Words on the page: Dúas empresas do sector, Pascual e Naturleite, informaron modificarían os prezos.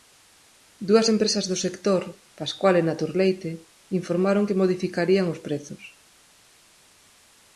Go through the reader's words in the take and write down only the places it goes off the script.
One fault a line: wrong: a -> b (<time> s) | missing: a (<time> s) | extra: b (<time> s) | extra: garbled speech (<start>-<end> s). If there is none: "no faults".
extra: que (4.5 s)